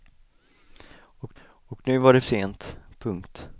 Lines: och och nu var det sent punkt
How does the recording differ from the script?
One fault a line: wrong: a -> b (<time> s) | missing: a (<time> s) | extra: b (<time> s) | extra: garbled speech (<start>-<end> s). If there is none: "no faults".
no faults